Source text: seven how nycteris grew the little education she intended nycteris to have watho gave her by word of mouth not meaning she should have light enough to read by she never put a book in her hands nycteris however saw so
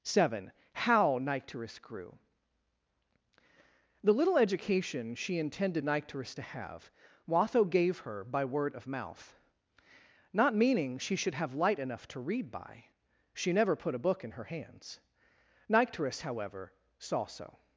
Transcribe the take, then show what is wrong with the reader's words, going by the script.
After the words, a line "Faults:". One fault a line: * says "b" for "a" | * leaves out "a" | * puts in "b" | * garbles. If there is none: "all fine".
seven how nycteris grew the little education she intended nycteris to have watho gave her by word of mouth not meaning she should have light enough to read by she never put a book in her hands nycteris however saw so
Faults:
all fine